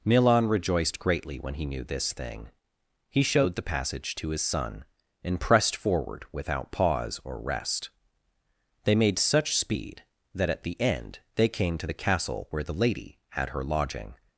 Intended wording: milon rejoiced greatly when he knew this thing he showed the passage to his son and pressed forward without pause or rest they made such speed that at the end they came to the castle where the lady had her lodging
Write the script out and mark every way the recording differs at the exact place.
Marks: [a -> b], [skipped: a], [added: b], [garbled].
milon rejoiced greatly when he knew this thing he showed the passage to his son and pressed forward without pause or rest they made such speed that at the end they came to the castle where the lady had her lodging